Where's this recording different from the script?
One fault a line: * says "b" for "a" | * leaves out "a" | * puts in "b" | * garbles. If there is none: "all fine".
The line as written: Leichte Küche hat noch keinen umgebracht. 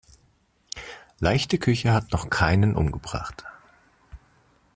all fine